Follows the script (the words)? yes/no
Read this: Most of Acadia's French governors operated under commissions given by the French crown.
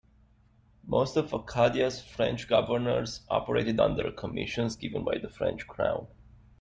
yes